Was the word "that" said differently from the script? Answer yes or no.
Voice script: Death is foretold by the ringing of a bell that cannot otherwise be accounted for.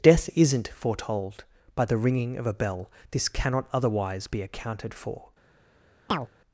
yes